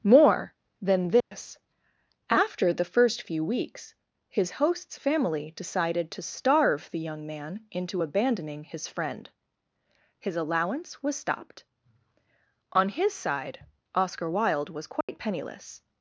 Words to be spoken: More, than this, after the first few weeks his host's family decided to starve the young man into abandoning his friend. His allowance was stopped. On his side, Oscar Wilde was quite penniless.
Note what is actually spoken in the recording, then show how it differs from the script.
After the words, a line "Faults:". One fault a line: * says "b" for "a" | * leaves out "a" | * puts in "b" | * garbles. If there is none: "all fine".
More, than this, after the first few weeks his host's family decided to starve the young man into abandoning his friend. His allowance was stopped. On his side, Oscar Wilde was quite penniless.
Faults:
all fine